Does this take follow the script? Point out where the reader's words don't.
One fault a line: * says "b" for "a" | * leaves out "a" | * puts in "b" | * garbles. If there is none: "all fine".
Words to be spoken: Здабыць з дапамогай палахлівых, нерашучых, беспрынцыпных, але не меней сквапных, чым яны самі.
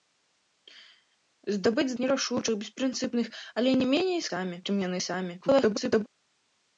* leaves out "дапамогай палахлівых"
* says "самі" for "сквапных"
* garbles